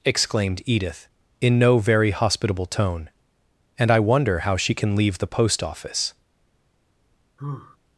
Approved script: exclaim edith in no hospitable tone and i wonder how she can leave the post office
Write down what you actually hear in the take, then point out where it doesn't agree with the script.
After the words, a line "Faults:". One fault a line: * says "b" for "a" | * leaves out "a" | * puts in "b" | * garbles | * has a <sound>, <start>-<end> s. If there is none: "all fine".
exclaimed edith in no very hospitable tone and i wonder how she can leave the post office
Faults:
* says "exclaimed" for "exclaim"
* puts in "very"
* has a sigh, 7.4-7.8 s